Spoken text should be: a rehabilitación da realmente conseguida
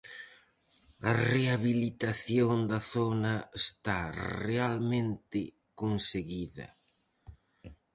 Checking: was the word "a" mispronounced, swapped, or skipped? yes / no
no